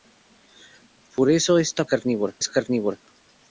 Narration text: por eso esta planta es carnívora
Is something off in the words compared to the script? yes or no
yes